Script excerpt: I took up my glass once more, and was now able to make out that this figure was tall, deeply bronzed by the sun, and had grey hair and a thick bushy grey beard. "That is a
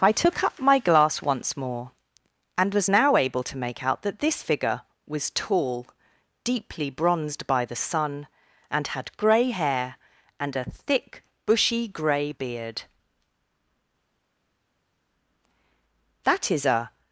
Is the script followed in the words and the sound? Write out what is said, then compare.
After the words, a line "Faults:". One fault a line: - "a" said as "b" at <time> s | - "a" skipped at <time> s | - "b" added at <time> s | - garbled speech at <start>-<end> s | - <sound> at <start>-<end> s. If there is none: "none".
I took up my glass once more, and was now able to make out that this figure was tall, deeply bronzed by the sun, and had grey hair and a thick bushy grey beard. "That is a
Faults:
none